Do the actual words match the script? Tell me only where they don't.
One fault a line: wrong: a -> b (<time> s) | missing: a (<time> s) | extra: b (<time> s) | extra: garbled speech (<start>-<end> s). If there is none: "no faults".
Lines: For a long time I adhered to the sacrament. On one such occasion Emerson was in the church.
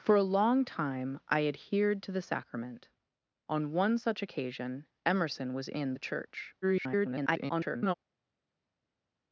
extra: garbled speech (6.6-7.9 s)